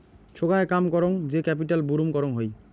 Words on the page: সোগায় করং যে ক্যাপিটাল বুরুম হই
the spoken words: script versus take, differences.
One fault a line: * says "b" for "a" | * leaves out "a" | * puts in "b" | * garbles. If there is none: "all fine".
* puts in "কাম"
* puts in "করং"